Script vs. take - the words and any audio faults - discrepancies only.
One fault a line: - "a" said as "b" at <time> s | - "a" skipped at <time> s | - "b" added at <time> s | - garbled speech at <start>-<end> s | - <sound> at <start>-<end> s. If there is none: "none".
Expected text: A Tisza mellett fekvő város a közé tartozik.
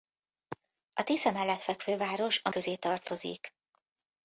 none